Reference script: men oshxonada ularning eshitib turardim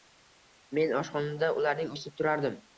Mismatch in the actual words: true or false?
false